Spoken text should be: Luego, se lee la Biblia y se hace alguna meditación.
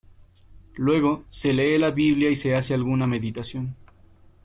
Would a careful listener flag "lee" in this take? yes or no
no